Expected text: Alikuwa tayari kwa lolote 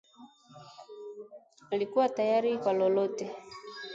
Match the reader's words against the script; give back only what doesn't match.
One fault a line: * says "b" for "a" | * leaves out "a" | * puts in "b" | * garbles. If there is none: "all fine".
all fine